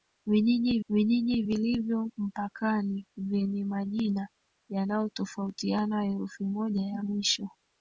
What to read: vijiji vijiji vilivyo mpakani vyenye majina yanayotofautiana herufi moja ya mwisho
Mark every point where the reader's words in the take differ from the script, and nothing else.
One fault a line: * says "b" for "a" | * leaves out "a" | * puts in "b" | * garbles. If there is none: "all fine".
all fine